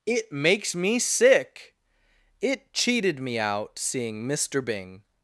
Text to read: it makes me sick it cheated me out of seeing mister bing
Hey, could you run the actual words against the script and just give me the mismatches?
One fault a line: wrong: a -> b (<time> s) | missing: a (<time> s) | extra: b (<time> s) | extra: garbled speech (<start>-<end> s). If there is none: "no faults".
missing: of (3.8 s)